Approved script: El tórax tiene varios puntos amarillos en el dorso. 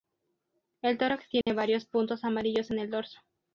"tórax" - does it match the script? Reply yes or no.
yes